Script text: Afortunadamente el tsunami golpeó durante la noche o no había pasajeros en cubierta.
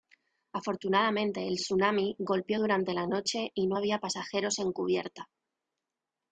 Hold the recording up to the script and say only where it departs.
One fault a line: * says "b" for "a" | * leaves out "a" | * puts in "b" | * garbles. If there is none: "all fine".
* says "y" for "o"